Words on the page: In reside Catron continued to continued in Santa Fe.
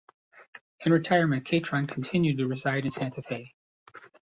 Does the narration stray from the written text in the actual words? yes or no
yes